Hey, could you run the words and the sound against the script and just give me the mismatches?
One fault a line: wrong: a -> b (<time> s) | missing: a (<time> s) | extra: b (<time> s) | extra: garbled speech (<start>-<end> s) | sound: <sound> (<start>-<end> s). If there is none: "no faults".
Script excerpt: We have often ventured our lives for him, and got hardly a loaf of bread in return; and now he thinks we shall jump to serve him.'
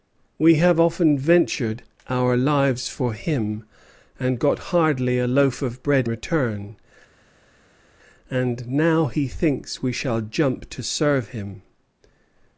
missing: in (6.1 s)